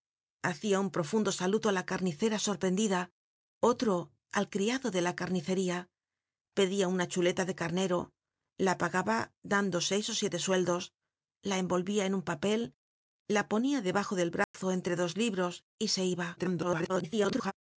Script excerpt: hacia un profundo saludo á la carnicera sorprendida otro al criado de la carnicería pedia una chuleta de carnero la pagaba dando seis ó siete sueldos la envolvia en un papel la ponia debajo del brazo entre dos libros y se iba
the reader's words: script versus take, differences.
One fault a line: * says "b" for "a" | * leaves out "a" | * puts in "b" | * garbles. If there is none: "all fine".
* garbles